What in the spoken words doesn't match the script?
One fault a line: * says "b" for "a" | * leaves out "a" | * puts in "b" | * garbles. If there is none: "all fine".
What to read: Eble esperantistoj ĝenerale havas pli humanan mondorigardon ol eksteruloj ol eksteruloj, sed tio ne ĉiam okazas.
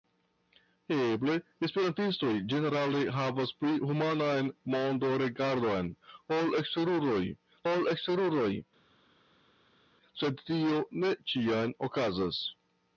all fine